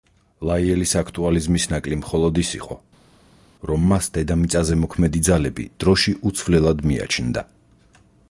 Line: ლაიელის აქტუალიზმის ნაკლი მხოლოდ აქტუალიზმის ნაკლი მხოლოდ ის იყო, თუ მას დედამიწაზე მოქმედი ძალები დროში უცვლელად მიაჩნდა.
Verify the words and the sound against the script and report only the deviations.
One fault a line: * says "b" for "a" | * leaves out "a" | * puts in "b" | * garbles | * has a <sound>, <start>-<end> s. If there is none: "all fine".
* leaves out "აქტუალიზმის ნაკლი მხოლოდ"
* says "რომ" for "თუ"